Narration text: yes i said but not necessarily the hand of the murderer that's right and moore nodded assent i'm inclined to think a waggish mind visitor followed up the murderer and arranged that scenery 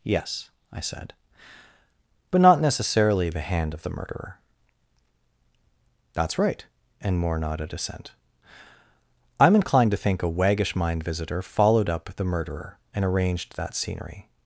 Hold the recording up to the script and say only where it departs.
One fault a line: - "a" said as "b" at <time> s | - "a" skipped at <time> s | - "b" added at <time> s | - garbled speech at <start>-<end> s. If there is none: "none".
none